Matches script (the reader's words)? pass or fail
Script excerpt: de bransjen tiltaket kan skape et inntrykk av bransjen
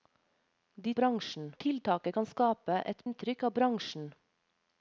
pass